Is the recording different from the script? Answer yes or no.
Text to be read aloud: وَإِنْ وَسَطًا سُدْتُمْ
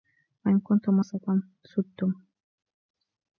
yes